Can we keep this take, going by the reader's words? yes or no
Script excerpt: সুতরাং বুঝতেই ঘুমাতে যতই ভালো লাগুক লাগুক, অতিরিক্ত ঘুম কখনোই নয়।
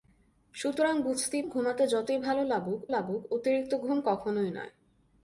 yes